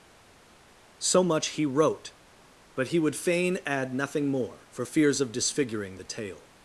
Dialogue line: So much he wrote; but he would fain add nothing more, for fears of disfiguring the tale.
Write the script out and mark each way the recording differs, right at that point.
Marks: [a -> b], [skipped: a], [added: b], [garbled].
So much he wrote; but he would fain add nothing more, for fears of disfiguring the tale.